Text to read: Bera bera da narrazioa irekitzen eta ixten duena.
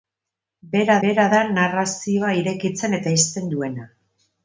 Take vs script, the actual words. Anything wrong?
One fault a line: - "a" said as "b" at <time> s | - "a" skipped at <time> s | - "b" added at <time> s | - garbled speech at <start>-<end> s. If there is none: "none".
none